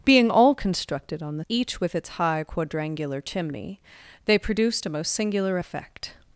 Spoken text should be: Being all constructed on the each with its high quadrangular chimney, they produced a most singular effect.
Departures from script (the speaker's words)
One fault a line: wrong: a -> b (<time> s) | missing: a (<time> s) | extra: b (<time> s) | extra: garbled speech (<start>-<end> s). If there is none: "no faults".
no faults